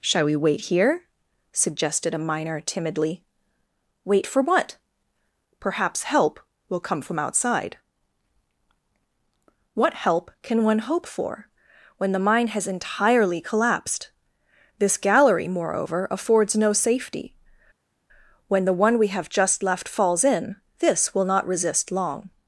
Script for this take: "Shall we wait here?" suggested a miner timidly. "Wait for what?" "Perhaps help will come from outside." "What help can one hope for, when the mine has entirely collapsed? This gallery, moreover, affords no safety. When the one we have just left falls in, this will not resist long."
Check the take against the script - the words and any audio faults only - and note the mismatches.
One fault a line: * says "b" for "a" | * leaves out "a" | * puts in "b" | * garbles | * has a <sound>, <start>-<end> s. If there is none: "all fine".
all fine